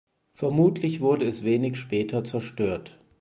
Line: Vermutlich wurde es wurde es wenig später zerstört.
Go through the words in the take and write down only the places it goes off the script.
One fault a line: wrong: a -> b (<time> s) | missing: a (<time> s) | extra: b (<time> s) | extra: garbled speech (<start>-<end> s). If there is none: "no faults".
missing: wurde es (1.4 s)